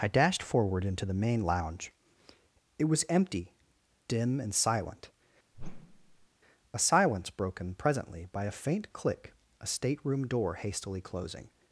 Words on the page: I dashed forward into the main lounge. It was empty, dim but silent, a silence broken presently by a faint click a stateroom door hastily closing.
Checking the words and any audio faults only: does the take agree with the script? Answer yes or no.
no